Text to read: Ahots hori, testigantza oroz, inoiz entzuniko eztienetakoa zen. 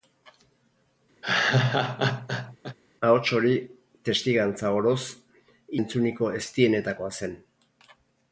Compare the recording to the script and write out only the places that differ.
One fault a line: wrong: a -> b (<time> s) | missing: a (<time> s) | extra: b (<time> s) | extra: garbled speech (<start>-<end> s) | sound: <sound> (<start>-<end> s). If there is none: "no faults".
sound: laugh (1.2-2.8 s)
missing: inoiz (5.0 s)